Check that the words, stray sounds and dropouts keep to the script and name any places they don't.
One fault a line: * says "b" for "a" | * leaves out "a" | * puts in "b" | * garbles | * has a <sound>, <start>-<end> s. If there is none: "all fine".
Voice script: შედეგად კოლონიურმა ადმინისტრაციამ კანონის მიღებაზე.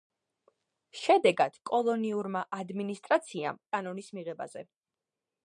all fine